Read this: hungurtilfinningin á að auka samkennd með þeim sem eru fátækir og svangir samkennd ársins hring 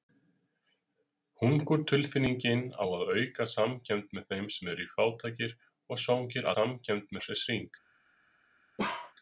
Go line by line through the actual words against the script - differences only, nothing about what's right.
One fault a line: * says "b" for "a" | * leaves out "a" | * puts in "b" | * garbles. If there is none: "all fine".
all fine